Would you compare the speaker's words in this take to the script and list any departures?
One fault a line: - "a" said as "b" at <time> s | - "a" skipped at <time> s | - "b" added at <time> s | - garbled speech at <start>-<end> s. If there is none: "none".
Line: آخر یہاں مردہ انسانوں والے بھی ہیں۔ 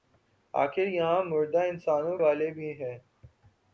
none